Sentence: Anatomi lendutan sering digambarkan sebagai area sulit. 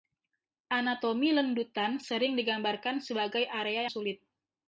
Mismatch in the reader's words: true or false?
false